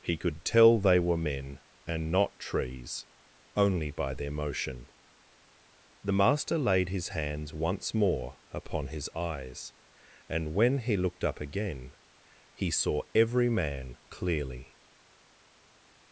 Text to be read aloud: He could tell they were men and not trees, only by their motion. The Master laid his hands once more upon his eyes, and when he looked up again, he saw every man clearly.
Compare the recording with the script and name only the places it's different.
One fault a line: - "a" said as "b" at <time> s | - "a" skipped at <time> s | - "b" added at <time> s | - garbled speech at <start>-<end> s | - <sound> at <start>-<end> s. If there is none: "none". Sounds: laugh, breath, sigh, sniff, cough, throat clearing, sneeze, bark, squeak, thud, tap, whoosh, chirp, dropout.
none